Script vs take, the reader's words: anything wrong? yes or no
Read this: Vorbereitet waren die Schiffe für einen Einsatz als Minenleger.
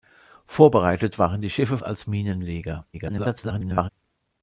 yes